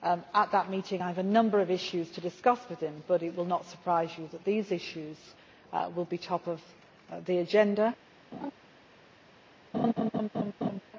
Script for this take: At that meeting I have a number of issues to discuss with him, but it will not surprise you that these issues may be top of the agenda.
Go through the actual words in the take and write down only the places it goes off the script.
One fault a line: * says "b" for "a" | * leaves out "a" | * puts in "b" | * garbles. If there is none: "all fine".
* says "will" for "may"